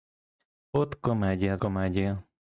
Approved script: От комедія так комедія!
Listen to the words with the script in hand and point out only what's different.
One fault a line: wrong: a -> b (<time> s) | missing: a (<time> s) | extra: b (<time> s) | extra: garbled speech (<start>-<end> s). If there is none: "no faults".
missing: так (1.6 s)